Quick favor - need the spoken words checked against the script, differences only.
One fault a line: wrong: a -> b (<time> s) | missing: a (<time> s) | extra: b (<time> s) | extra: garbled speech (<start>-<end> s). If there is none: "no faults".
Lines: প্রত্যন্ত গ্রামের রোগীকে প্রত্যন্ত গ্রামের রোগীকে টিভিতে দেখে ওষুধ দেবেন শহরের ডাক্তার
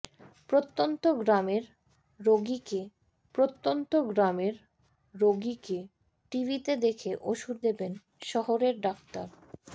no faults